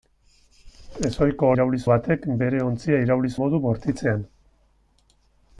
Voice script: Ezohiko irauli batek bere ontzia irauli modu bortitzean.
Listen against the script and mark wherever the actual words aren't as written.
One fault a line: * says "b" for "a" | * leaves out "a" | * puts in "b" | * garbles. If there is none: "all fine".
all fine